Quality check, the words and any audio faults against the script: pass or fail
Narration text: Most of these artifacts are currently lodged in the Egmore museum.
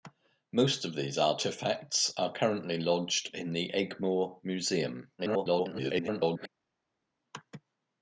fail